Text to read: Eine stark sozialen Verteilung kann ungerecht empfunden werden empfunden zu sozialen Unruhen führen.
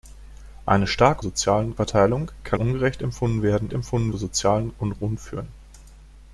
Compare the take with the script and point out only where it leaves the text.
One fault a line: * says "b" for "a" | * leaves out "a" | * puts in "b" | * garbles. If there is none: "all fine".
all fine